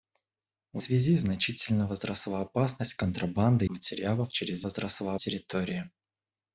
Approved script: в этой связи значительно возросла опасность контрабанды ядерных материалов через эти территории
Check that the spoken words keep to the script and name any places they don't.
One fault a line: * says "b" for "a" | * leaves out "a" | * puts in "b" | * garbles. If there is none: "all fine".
* leaves out "этой"
* leaves out "ядерных"
* says "возросла" for "эти"